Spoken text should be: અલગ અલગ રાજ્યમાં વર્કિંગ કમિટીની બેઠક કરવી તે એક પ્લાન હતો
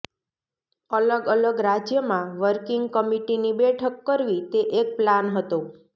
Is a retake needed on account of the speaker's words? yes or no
no